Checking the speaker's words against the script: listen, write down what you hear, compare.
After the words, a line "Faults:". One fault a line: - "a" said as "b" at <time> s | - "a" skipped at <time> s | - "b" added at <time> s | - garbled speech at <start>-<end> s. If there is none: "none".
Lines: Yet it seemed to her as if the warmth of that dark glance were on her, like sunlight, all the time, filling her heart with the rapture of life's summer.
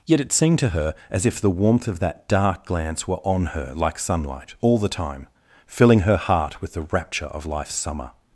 Yet it seemed to her as if the warmth of that dark glance were on her, like sunlight, all the time, filling her heart with the rapture of life's summer.
Faults:
none